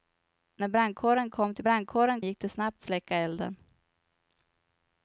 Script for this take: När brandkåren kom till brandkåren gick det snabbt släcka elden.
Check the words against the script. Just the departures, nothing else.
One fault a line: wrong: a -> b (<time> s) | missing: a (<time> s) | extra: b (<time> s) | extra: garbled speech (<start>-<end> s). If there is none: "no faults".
no faults